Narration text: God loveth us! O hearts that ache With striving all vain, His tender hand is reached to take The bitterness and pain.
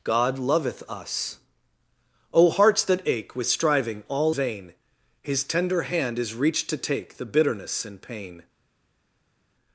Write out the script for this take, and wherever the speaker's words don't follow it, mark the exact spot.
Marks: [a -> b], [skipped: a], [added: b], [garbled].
God loveth us! O hearts that ache With striving all vain, His tender hand is reached to take The bitterness and pain.